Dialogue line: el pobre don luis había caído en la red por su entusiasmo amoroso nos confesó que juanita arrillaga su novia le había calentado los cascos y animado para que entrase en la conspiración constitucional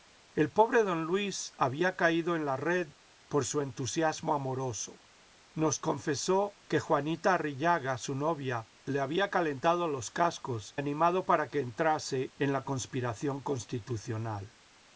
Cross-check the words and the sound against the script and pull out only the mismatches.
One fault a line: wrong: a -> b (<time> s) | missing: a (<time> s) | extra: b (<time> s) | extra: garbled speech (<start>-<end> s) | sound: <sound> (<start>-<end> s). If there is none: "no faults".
missing: y (10.7 s)